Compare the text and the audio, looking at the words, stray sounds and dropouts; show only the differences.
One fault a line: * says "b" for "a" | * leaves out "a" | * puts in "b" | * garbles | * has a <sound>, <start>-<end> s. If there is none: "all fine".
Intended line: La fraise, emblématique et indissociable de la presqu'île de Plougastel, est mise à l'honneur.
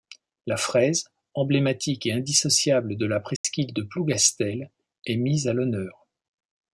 * has a dropout, 3.4-3.4 s